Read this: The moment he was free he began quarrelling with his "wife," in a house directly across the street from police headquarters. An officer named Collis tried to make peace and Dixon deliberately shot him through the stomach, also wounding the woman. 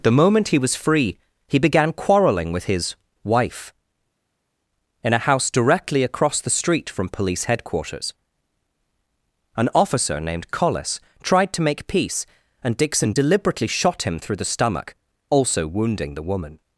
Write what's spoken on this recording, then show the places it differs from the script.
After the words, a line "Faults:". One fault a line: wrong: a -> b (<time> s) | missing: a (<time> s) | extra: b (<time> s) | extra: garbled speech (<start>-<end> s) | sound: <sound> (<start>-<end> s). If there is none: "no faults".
The moment he was free he began quarrelling with his "wife," in a house directly across the street from police headquarters. An officer named Collis tried to make peace and Dixon deliberately shot him through the stomach, also wounding the woman.
Faults:
no faults